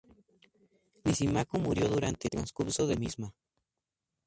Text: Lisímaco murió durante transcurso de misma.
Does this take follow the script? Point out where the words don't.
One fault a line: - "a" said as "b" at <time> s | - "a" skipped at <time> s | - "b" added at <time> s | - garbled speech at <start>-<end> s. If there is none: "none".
none